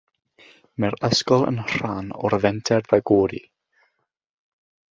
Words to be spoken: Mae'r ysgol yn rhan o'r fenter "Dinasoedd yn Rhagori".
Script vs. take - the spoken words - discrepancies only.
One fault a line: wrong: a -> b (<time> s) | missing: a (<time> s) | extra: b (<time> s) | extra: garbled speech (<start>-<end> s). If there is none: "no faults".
missing: Dinasoedd yn (2.9 s)